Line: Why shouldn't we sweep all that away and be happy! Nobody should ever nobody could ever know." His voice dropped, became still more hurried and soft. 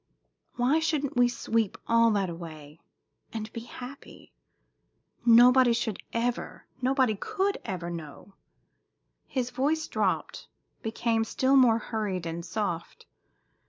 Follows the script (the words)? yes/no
yes